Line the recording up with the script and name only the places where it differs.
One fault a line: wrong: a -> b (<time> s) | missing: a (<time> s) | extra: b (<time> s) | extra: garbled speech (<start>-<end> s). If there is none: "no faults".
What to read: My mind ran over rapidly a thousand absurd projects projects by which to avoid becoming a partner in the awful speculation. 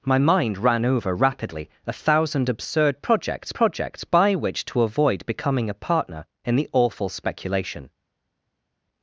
no faults